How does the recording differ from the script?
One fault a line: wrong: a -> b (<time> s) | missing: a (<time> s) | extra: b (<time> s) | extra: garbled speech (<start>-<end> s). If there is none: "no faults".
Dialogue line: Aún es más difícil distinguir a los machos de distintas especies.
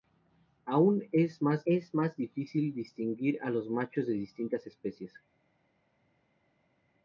extra: es más (1.6 s)